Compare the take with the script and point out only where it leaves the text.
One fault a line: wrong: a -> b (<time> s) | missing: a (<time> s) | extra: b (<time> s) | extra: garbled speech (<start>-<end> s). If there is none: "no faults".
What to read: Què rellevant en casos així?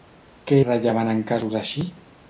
no faults